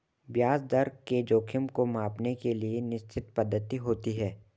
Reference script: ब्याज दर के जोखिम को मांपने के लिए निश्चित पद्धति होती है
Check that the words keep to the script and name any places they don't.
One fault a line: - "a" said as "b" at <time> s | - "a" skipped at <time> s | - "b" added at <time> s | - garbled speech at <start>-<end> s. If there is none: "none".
none